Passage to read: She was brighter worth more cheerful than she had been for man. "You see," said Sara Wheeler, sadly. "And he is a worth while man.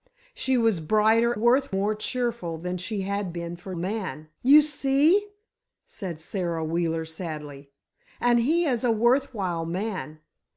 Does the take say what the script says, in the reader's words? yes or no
yes